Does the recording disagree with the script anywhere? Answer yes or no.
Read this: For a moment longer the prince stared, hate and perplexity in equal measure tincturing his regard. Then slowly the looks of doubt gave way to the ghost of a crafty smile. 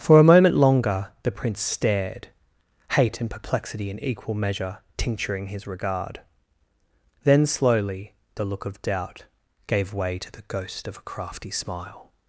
yes